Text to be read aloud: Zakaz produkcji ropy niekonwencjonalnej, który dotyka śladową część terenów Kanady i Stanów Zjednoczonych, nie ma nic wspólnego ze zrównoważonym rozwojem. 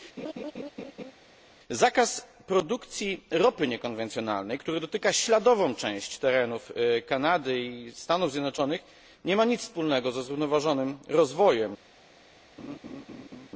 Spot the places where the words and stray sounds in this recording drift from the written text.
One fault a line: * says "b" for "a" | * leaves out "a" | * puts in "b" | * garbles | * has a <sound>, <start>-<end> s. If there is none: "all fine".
* has a laugh, 0.2-1.1 s
* has a laugh, 12.6-13.5 s